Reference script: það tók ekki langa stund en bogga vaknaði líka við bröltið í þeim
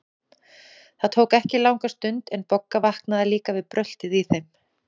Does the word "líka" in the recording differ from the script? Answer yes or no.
no